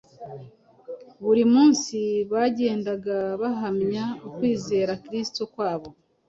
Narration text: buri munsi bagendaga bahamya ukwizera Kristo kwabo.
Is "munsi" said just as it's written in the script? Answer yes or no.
yes